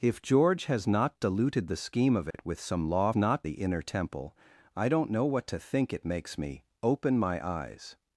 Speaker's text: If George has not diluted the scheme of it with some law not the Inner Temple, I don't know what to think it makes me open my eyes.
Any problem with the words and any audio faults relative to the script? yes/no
yes